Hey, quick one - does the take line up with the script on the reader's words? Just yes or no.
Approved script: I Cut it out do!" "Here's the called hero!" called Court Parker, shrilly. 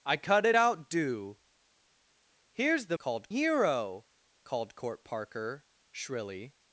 yes